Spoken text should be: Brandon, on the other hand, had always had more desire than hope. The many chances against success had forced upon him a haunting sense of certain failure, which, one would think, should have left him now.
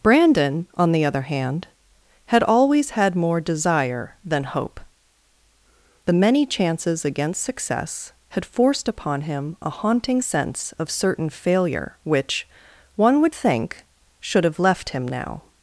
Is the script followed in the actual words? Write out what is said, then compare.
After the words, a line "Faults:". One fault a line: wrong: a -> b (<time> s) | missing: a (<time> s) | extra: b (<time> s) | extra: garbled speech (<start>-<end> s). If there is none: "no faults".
Brandon, on the other hand, had always had more desire than hope. The many chances against success had forced upon him a haunting sense of certain failure, which, one would think, should have left him now.
Faults:
no faults